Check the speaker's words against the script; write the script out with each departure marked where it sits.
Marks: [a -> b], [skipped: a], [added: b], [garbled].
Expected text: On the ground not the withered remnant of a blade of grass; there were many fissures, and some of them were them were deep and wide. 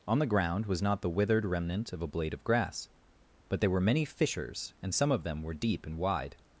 On the ground [added: was] not the withered remnant of a blade of grass; [added: but] there were many fissures, and some of them were [skipped: them were] deep and wide.